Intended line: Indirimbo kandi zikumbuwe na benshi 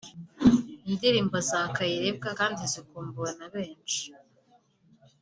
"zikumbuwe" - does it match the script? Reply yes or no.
yes